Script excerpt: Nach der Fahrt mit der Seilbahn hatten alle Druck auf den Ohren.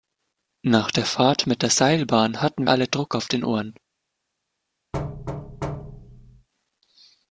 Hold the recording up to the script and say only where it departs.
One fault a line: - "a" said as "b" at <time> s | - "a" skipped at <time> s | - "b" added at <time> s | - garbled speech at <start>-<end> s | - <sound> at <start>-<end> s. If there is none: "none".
- thud at 4.9-6.5 s